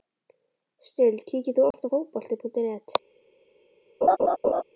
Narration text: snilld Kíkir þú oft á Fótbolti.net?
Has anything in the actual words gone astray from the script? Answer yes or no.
no